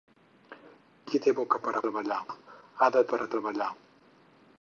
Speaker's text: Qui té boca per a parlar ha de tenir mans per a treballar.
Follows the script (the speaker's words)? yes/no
no